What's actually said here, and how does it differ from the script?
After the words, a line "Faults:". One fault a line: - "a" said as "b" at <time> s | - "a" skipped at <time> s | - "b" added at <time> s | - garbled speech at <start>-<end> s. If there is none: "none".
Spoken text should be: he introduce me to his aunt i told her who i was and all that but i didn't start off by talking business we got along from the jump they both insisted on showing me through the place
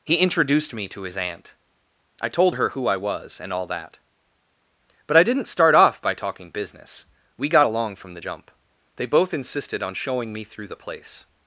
he introduced me to his aunt i told her who i was and all that but i didn't start off by talking business we got along from the jump they both insisted on showing me through the place
Faults:
- "introduce" said as "introduced" at 0.1 s